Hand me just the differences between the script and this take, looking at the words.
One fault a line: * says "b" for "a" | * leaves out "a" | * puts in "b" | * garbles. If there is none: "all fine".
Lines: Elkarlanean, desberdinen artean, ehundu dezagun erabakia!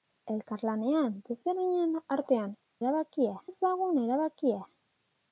* says "erabakia" for "ehundu"